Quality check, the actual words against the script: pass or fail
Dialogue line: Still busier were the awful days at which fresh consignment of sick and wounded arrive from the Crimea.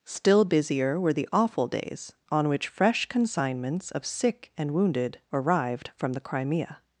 fail